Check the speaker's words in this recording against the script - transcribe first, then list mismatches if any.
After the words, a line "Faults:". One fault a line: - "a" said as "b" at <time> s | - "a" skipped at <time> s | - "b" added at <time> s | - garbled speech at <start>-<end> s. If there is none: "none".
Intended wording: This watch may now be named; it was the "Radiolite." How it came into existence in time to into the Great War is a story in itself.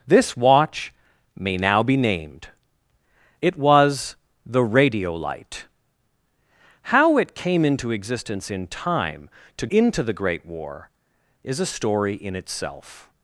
This watch may now be named; it was the "Radiolite." How it came into existence in time to into the Great War is a story in itself.
Faults:
none